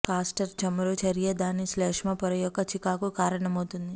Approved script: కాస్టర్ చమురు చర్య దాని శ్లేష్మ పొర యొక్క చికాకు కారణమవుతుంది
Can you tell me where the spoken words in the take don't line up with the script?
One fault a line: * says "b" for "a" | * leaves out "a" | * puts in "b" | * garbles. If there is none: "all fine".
all fine